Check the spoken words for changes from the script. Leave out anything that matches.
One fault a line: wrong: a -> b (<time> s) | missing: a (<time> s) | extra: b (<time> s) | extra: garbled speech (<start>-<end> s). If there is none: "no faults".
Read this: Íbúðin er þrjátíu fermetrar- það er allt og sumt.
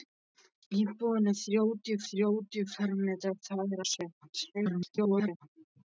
extra: þrjátíu (2.1 s)
missing: allt (3.8 s)
extra: garbled speech (4.5-5.5 s)